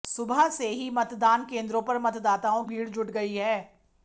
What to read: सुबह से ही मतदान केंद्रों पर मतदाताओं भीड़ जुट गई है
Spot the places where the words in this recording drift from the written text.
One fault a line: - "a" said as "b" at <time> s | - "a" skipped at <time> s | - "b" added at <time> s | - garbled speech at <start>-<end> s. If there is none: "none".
none